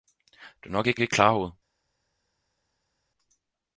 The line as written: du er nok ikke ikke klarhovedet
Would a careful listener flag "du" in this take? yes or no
no